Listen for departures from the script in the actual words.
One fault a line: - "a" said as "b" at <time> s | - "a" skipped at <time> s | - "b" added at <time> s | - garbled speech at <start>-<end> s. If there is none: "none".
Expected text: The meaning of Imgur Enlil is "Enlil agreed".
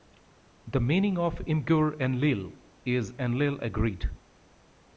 none